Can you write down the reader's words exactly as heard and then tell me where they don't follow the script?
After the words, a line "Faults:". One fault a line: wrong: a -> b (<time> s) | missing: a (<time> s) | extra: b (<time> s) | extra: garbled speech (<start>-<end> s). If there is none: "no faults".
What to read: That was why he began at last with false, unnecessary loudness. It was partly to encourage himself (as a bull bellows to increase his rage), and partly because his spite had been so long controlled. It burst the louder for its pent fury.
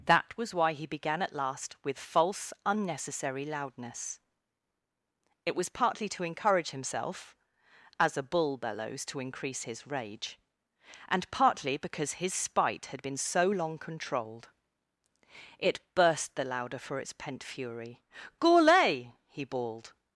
That was why he began at last with false, unnecessary loudness. It was partly to encourage himself (as a bull bellows to increase his rage), and partly because his spite had been so long controlled. It burst the louder for its pent fury. Gourlay!" he bawled
Faults:
extra: Gourlay he bawled (18.4 s)